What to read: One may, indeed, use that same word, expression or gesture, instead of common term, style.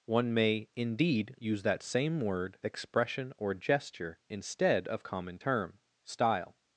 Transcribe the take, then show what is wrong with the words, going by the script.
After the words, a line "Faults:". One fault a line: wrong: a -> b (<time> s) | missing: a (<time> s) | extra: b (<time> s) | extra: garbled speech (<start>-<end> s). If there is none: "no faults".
One may, indeed, use that same word, expression or gesture, instead of common term, style.
Faults:
no faults